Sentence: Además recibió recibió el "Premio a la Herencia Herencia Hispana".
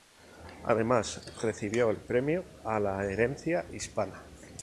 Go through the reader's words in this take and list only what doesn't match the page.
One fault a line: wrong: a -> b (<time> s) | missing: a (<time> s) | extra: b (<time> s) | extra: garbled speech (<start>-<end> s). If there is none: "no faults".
missing: recibió (1.9 s)
missing: Herencia (3.7 s)